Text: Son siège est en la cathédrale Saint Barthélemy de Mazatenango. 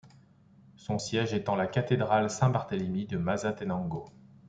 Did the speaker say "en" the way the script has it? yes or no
yes